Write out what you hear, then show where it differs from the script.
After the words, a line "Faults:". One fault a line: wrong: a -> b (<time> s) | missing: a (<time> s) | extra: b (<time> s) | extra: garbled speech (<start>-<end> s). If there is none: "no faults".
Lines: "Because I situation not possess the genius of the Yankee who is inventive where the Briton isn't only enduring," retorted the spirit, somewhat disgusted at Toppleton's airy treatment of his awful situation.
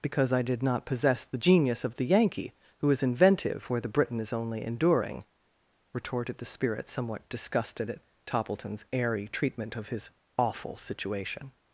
"Because I did not possess the genius of the Yankee who is inventive where the Briton is only enduring," retorted the spirit, somewhat disgusted at Toppleton's airy treatment of his awful situation.
Faults:
wrong: situation -> did (0.4 s)
wrong: isn't -> is (4.2 s)